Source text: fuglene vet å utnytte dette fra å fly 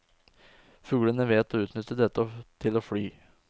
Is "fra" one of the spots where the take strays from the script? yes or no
yes